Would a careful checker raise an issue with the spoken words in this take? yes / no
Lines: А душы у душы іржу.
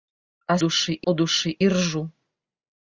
no